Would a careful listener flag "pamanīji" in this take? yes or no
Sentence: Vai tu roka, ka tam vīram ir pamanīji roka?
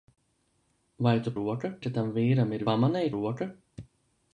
no